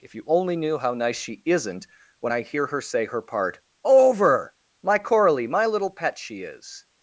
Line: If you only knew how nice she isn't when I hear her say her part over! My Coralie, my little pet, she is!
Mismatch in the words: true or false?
false